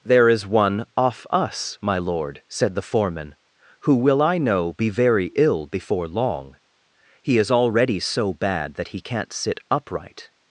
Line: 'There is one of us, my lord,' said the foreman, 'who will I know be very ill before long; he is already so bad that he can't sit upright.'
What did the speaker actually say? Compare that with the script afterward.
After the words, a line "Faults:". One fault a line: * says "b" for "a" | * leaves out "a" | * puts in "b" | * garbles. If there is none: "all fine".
'There is one off us, my lord,' said the foreman, 'who will I know be very ill before long; he is already so bad that he can't sit upright.'
Faults:
* says "off" for "of"